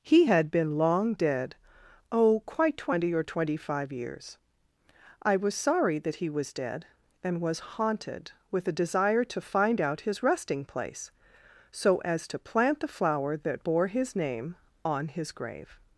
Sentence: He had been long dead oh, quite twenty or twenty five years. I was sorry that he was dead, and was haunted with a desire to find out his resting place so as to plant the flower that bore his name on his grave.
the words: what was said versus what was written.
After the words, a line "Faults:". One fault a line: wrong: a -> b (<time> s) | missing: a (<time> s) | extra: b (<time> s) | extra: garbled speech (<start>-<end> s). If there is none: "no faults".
He had been long dead oh, quite twenty or twenty five years. I was sorry that he was dead, and was haunted with a desire to find out his resting place so as to plant the flower that bore his name on his grave.
Faults:
no faults